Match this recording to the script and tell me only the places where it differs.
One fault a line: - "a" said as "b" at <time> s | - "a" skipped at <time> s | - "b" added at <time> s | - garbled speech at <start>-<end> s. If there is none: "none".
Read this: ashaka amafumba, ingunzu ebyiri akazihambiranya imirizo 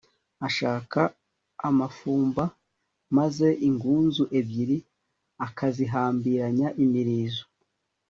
- "maze" added at 3.2 s